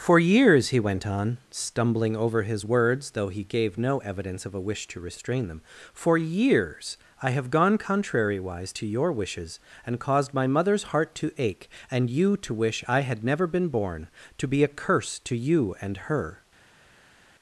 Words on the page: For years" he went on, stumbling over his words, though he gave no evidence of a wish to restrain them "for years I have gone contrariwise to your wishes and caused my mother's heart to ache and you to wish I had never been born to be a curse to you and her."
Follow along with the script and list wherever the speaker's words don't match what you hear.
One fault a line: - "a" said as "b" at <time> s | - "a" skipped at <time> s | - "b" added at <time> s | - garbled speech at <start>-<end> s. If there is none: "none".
none